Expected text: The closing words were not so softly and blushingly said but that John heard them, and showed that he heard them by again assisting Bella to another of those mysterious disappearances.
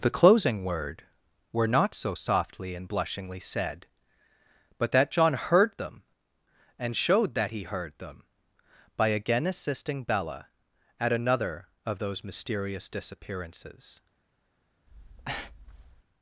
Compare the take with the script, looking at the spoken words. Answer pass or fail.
fail